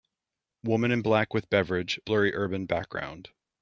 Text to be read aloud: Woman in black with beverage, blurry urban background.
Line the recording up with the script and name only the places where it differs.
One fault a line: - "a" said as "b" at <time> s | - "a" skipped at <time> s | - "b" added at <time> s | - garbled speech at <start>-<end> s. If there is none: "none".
none